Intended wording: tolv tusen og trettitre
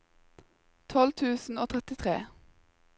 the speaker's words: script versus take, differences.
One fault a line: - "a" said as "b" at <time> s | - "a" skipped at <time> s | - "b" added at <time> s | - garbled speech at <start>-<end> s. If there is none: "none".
none